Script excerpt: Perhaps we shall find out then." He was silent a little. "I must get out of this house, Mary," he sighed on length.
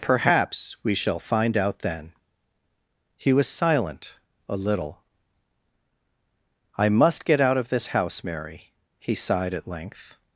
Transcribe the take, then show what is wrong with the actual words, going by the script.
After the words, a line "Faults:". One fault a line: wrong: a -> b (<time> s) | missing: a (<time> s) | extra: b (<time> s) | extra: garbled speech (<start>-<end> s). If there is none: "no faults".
Perhaps we shall find out then." He was silent a little. "I must get out of this house, Mary," he sighed at length.
Faults:
wrong: on -> at (9.5 s)